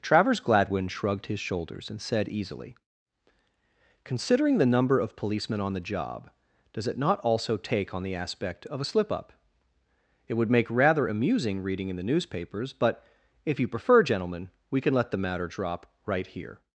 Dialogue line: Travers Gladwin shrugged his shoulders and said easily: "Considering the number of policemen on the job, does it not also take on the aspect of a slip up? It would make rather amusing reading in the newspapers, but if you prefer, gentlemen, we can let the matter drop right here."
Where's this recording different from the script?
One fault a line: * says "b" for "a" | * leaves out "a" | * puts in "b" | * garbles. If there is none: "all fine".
all fine